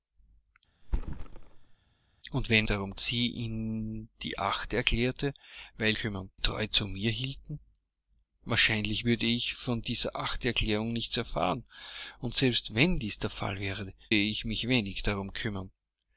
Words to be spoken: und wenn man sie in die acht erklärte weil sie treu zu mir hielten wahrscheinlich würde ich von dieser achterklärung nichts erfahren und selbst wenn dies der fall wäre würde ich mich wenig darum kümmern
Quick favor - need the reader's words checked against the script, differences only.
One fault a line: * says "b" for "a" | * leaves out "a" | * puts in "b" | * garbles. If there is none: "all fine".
* says "darum" for "man"
* says "kümmern" for "sie"
* leaves out "würde"